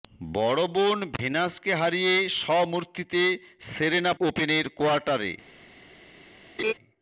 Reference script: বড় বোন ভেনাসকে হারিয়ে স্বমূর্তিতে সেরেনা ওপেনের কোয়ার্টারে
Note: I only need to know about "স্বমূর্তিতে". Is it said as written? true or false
true